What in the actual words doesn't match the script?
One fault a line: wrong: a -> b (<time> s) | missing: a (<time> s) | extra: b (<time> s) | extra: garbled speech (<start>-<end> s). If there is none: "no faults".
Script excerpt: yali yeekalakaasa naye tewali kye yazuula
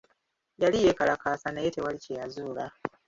no faults